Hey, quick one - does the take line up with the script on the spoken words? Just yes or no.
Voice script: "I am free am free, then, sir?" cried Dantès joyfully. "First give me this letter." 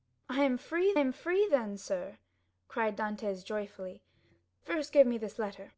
yes